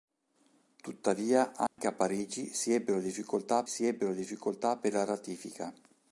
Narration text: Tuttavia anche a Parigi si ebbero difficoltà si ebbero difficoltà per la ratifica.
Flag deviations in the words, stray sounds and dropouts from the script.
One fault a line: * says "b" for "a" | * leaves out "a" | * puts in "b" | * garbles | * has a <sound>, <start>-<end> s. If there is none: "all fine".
* has a dropout, 1.7-1.8 s